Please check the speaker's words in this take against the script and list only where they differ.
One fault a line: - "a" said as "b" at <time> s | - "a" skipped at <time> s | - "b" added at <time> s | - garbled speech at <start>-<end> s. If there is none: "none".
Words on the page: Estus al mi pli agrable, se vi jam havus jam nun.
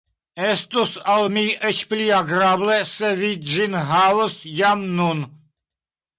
- "eĉ" added at 1.7 s
- "jam" said as "ĝin" at 3.6 s